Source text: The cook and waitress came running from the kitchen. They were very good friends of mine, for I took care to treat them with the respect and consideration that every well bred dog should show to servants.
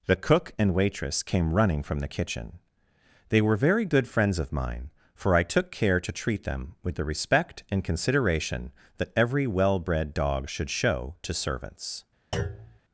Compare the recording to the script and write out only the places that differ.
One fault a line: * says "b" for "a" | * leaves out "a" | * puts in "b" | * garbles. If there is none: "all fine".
all fine